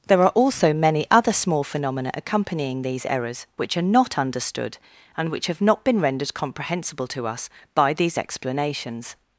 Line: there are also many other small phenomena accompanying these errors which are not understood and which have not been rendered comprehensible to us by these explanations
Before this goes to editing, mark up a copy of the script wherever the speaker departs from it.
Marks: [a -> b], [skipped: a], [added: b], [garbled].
there are also many other small phenomena accompanying these errors which are not understood and which have not been rendered comprehensible to us by these explanations